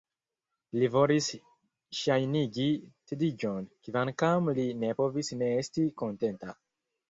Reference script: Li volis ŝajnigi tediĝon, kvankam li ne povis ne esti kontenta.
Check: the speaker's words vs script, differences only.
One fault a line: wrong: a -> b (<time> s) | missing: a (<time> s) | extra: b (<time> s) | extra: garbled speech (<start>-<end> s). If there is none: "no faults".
no faults